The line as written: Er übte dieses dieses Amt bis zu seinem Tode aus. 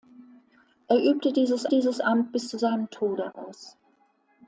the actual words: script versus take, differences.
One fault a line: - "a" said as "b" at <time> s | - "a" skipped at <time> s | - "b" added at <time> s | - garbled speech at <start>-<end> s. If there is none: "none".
none